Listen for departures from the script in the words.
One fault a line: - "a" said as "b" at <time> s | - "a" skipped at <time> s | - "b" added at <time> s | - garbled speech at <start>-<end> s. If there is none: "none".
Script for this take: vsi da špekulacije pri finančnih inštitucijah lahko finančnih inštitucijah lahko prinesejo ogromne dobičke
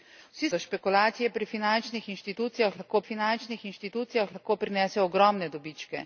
none